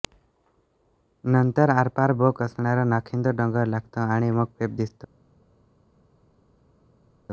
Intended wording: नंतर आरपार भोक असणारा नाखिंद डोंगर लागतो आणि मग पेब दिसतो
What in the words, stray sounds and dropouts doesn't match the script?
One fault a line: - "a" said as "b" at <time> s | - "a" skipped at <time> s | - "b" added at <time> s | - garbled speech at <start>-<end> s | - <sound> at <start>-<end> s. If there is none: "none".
none